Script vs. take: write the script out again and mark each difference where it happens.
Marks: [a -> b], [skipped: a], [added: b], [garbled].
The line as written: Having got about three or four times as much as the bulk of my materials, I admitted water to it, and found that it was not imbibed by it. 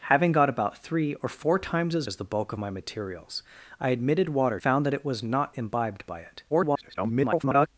Having got about three or four times as [skipped: much] as the bulk of my materials, I admitted water [skipped: to it, and] found that it was not imbibed by it. [garbled]